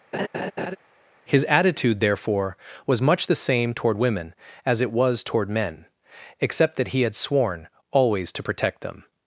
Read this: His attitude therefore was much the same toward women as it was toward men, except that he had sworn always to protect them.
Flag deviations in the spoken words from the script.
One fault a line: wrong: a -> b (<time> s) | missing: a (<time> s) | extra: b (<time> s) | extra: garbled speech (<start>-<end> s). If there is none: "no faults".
no faults